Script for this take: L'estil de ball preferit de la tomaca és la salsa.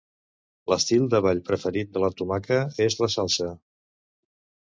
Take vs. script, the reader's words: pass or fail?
pass